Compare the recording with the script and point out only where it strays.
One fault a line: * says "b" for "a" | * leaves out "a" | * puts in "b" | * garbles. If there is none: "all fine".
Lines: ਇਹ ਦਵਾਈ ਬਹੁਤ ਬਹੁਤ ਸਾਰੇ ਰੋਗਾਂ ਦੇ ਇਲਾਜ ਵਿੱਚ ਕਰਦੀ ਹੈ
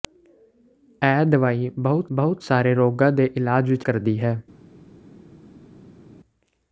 all fine